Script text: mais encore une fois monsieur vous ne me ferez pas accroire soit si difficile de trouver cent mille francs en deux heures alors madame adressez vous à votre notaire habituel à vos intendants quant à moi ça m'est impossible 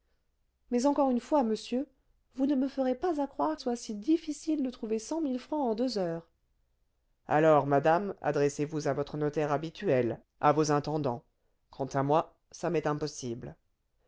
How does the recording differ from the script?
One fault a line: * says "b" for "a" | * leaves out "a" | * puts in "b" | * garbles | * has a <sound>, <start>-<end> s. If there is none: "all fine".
all fine